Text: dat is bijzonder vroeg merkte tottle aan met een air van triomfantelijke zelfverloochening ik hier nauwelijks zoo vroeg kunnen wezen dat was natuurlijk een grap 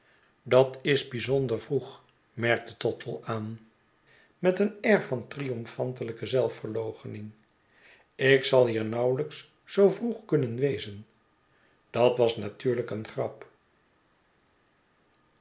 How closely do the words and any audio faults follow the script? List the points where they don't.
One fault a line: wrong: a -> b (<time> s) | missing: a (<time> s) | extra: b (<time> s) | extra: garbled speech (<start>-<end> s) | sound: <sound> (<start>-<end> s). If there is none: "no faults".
extra: zal (8.4 s)